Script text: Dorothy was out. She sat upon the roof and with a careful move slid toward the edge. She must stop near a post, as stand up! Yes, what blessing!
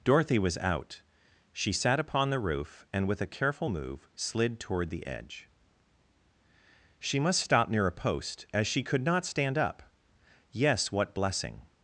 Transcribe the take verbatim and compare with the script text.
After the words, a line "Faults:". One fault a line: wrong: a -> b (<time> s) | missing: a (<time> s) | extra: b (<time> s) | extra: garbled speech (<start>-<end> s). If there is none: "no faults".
Dorothy was out. She sat upon the roof and with a careful move slid toward the edge. She must stop near a post, as she could not stand up! Yes, what blessing!
Faults:
extra: she could not (8.7 s)